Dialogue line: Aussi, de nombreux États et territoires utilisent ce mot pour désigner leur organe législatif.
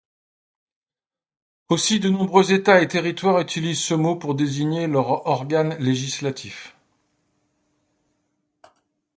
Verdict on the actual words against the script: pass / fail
pass